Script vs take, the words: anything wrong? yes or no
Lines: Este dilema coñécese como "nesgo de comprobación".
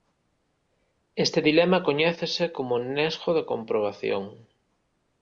no